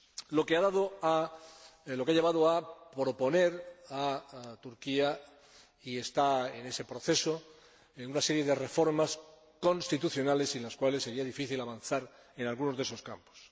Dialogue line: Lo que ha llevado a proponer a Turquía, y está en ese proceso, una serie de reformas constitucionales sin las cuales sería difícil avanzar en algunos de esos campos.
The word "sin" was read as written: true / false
true